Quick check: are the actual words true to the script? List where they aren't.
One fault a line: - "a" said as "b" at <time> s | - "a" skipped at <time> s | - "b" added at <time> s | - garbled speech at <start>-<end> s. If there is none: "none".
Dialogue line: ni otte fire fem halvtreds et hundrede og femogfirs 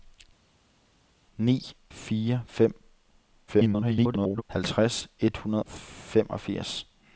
- "otte" skipped at 1.6 s
- garbled speech at 3.5-4.4 s
- "og" skipped at 5.6 s